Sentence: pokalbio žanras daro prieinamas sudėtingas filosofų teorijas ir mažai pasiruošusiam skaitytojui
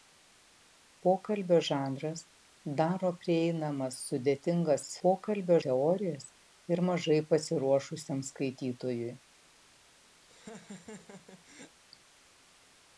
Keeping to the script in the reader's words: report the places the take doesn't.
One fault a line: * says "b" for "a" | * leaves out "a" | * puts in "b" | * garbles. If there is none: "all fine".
* says "pokalbio" for "filosofų"